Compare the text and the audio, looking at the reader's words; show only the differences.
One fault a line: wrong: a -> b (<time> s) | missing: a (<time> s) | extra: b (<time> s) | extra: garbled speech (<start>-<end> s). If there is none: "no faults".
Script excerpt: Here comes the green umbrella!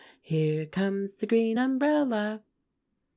no faults